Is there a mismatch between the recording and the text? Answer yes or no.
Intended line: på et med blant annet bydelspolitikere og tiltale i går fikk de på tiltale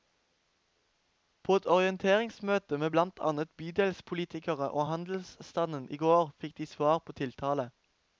yes